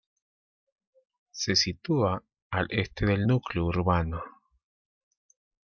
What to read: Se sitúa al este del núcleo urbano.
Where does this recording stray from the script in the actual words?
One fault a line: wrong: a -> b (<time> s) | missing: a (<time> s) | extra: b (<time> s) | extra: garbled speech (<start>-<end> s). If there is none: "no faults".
no faults